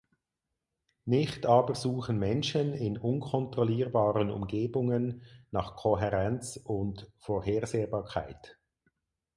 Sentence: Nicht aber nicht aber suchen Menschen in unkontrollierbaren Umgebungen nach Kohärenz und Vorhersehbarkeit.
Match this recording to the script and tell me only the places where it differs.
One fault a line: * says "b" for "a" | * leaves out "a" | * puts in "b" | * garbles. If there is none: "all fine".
* leaves out "nicht aber"